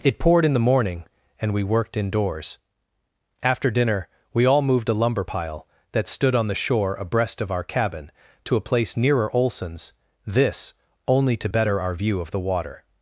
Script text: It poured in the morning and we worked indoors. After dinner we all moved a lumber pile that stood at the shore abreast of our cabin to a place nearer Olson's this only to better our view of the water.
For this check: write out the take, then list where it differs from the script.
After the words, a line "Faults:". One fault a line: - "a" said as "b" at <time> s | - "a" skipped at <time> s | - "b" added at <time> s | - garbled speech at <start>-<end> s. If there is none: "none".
It poured in the morning and we worked indoors. After dinner we all moved a lumber pile that stood on the shore abreast of our cabin to a place nearer Olson's this only to better our view of the water.
Faults:
- "at" said as "on" at 6.4 s